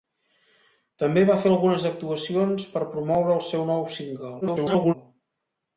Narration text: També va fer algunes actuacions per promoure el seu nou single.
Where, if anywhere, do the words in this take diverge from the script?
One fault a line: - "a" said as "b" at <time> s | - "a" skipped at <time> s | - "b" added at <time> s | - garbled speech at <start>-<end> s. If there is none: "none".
- garbled speech at 4.4-4.9 s